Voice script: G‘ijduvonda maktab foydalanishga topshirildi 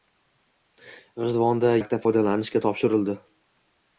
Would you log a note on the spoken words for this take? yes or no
no